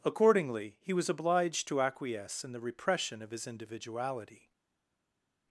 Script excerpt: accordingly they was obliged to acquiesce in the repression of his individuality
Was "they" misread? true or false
true